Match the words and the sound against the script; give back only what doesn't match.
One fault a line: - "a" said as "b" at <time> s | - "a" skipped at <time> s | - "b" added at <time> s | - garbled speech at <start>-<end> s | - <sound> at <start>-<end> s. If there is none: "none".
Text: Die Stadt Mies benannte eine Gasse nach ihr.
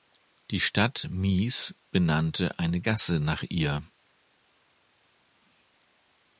none